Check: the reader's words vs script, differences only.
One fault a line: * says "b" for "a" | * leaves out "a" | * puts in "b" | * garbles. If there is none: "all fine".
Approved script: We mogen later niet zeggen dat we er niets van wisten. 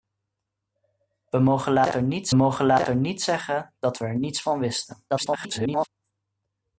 * puts in "mogen later niet"
* garbles